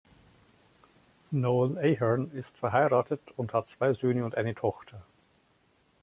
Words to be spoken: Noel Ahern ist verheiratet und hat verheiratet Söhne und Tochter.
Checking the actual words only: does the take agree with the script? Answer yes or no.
no